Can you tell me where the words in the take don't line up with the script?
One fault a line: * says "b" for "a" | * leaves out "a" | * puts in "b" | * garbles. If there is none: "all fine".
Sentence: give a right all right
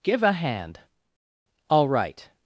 * says "hand" for "right"